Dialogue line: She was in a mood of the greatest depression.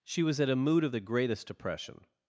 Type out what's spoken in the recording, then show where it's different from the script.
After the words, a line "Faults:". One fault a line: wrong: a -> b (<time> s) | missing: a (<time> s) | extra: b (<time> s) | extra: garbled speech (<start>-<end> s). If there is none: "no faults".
She was at a mood of the greatest depression.
Faults:
wrong: in -> at (0.4 s)